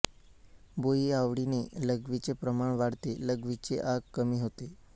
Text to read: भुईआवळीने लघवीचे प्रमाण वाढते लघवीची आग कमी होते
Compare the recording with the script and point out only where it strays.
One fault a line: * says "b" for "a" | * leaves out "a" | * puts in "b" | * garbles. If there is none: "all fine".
all fine